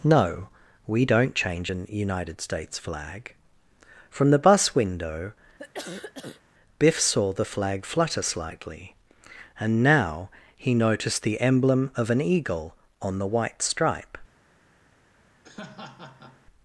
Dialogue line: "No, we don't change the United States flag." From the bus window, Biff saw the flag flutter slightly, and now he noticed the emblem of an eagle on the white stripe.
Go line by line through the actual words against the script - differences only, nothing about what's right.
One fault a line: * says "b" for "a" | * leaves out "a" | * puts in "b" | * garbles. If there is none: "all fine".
* says "an" for "the"